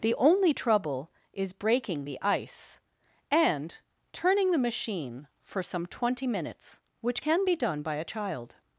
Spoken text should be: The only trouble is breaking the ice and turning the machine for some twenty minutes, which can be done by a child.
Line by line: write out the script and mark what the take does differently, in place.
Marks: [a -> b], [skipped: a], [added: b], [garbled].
The only trouble is breaking the ice and turning the machine for some twenty minutes, which can be done by a child.